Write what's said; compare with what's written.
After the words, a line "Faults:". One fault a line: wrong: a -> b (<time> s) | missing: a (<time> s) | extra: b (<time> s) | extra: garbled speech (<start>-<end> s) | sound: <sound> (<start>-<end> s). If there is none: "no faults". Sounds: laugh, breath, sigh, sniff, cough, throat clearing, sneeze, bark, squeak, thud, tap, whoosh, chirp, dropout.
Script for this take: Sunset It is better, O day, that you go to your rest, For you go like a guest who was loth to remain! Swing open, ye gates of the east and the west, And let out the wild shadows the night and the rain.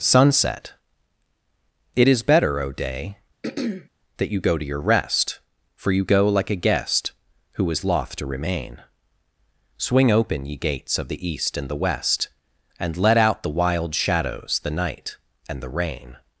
Sunset It is better, O day, that you go to your rest, For you go like a guest who is loth to remain! Swing open, ye gates of the east and the west, And let out the wild shadows the night and the rain.
Faults:
sound: throat clearing (3.4-3.9 s)
wrong: was -> is (7.7 s)